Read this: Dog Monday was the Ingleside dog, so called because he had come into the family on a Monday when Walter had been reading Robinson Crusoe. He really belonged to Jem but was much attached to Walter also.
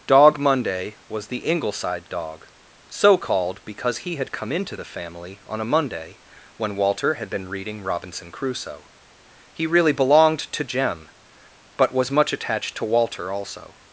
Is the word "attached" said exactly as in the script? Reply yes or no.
yes